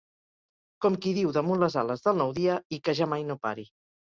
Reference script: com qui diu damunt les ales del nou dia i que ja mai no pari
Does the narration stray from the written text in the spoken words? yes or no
no